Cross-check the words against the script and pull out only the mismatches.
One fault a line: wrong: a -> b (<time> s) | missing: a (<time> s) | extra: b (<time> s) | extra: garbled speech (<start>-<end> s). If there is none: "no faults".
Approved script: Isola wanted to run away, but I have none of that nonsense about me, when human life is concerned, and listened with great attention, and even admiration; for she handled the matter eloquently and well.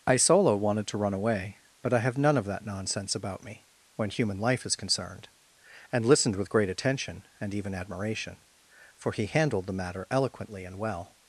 wrong: she -> he (9.1 s)